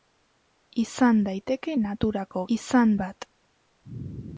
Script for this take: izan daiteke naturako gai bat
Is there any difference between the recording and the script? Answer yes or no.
yes